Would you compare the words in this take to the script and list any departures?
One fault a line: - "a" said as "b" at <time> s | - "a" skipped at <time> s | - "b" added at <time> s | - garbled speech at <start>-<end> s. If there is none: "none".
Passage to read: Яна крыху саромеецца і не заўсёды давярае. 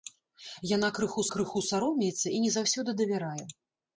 - "крыху" added at 1.4 s